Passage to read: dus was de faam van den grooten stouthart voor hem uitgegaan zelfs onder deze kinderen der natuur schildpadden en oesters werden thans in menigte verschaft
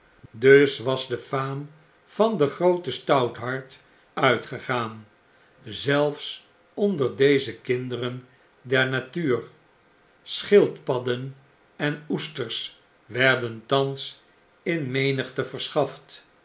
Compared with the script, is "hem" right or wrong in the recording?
wrong